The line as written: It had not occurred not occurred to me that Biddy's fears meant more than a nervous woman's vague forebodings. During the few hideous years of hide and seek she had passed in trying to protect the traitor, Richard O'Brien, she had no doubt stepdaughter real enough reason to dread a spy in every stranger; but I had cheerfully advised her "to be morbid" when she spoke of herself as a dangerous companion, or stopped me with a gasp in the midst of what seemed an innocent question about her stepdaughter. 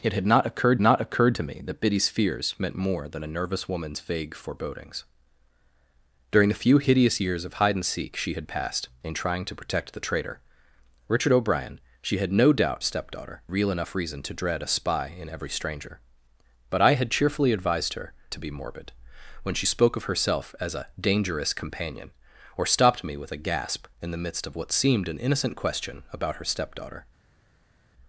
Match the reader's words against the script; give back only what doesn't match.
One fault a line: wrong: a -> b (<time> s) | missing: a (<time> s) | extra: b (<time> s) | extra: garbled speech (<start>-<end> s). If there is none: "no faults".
no faults